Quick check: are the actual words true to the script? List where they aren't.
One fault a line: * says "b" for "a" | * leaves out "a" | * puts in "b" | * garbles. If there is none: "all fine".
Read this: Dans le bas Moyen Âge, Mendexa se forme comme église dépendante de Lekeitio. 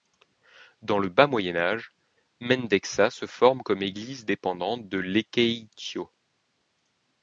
all fine